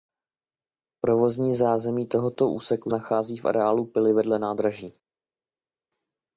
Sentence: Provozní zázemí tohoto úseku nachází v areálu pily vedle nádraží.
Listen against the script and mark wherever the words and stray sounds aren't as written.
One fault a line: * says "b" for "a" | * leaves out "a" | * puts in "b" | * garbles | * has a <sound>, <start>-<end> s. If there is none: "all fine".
all fine